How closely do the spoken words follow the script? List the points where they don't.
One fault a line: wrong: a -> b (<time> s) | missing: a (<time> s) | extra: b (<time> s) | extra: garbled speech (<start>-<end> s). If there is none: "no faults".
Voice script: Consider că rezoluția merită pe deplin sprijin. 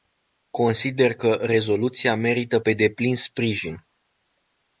no faults